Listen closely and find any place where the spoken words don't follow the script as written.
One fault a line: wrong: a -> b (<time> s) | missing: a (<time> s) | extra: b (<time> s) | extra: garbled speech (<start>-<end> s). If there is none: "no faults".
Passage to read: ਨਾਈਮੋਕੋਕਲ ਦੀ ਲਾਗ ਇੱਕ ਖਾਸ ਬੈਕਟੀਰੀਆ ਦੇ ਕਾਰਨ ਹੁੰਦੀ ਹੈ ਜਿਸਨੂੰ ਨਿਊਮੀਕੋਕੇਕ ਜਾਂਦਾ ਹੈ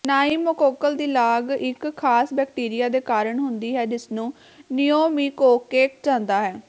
no faults